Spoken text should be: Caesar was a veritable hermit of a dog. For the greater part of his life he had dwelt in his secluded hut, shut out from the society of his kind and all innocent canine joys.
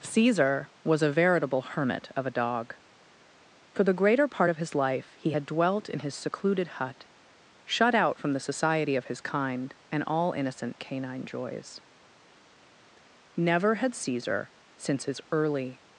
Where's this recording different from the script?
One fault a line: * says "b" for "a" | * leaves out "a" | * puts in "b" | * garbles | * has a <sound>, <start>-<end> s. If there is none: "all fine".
* puts in "Never had Caesar since his early"